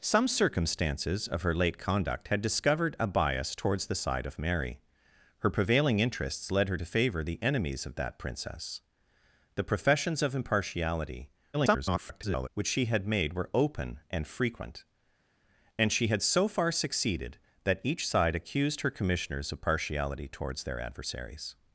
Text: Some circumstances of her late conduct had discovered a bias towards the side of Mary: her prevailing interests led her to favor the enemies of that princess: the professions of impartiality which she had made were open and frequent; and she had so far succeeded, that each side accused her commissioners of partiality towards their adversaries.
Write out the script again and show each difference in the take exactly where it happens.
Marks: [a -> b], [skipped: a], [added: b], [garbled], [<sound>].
Some circumstances of her late conduct had discovered a bias towards the side of Mary: her prevailing interests led her to favor the enemies of that princess: the professions of impartiality [garbled] which she had made were open and frequent; and she had so far succeeded, that each side accused her commissioners of partiality towards their adversaries.